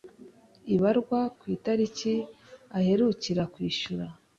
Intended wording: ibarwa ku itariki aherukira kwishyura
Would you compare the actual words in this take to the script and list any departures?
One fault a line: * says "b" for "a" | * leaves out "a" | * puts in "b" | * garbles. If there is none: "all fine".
all fine